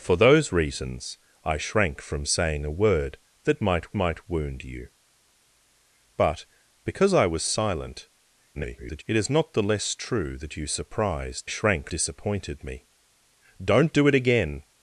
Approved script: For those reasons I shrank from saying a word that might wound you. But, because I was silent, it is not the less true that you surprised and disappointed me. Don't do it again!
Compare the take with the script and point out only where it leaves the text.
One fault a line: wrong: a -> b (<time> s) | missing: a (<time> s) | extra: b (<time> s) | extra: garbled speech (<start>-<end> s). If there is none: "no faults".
extra: might (3.9 s)
extra: garbled speech (8.5-9.0 s)
wrong: and -> shrank (11.5 s)